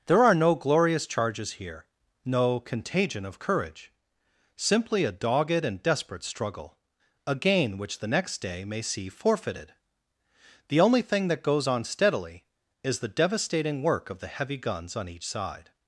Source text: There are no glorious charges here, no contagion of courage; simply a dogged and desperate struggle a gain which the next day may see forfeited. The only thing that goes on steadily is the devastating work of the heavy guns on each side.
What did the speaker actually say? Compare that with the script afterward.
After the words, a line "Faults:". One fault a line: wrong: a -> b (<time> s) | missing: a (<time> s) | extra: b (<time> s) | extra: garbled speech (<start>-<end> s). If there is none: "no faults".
There are no glorious charges here, no contagion of courage; simply a dogged and desperate struggle a gain which the next day may see forfeited. The only thing that goes on steadily is the devastating work of the heavy guns on each side.
Faults:
no faults